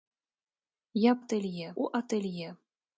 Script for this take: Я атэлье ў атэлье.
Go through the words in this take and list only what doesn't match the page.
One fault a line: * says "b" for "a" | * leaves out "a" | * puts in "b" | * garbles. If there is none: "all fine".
all fine